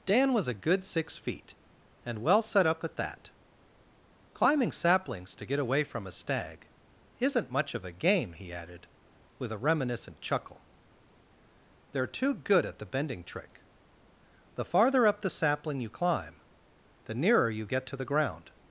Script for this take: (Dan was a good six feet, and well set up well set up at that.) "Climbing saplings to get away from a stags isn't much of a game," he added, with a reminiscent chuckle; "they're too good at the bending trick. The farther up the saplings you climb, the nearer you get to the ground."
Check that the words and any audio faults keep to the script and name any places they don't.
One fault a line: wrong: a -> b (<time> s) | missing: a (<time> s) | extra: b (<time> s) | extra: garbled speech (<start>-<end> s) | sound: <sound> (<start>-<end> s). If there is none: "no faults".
missing: well set up (2.8 s)
wrong: stags -> stag (6.1 s)
wrong: saplings -> sapling (15.3 s)